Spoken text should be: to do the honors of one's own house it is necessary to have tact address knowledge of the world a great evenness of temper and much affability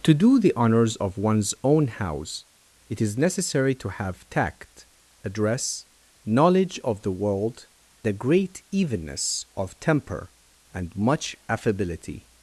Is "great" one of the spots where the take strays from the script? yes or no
no